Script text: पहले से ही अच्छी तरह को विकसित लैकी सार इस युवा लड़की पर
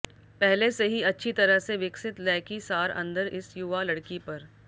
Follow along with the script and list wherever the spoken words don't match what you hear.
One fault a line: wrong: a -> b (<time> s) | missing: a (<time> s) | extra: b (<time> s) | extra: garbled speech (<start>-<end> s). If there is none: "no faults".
wrong: को -> से (1.6 s)
extra: अंदर (2.9 s)